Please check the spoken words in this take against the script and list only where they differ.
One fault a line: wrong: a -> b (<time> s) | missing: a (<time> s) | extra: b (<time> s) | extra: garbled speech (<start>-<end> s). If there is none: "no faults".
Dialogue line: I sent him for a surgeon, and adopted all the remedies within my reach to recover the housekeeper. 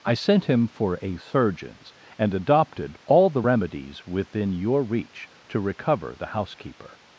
wrong: surgeon -> surgeons (1.2 s)
wrong: my -> your (4.5 s)